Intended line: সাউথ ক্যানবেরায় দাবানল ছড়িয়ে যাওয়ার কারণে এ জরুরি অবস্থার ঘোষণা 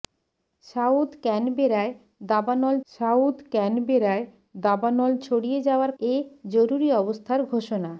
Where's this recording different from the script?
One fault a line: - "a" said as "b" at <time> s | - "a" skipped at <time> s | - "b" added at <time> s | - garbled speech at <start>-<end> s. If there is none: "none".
- "সাউথ ক্যানবেরায় দাবানল" added at 2.9 s
- "কারণে" skipped at 5.9 s